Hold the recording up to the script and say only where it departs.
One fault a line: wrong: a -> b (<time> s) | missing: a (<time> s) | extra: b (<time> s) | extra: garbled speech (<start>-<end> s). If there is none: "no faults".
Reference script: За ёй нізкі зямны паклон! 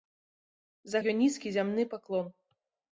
no faults